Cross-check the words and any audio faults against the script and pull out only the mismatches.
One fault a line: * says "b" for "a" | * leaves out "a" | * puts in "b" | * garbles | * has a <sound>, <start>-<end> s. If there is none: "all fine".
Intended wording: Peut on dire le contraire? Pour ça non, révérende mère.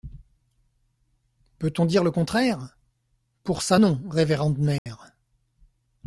* has a dropout, 4.8-4.9 s